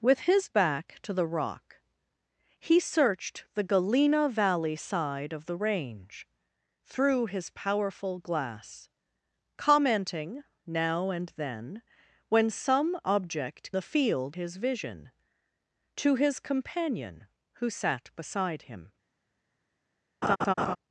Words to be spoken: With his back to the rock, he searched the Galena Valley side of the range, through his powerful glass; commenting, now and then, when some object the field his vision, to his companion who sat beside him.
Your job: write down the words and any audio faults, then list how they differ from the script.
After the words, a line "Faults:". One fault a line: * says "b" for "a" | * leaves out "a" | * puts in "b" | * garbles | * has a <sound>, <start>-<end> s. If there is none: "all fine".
With his back to the rock, he searched the Galena Valley side of the range, through his powerful glass; commenting, now and then, when some object the field his vision, to his companion who sat beside him.
Faults:
* has a laugh, 20.2-20.8 s